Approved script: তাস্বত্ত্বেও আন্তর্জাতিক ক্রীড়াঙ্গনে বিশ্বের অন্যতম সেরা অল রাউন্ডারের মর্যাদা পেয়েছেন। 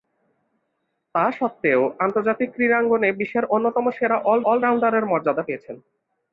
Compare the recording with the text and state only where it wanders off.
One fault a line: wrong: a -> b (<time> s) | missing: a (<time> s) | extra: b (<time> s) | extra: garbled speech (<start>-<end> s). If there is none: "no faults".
extra: অল (4.4 s)